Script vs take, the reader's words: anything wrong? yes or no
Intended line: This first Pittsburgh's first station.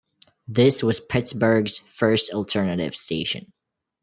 yes